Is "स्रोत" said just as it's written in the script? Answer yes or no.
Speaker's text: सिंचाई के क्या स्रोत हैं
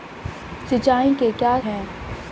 no